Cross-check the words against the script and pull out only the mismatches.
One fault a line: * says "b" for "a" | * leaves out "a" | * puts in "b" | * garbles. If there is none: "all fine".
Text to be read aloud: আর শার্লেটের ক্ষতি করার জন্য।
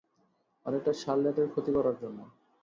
* puts in "এটা"